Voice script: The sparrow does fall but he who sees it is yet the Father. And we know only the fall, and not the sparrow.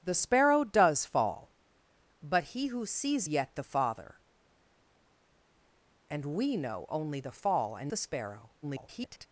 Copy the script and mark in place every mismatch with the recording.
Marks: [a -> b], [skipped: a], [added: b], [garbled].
The sparrow does fall but he who sees [skipped: it is] yet the Father. And we know only the fall, and [skipped: not] the sparrow. [garbled]